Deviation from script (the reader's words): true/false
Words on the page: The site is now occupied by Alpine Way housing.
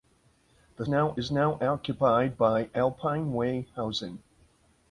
true